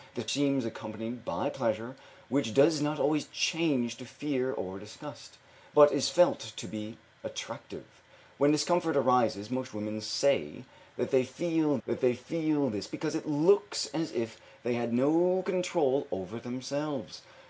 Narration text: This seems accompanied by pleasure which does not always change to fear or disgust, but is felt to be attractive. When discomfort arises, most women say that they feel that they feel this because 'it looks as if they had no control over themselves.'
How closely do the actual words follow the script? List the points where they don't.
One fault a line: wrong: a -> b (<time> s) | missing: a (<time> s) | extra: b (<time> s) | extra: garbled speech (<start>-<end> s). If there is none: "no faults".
no faults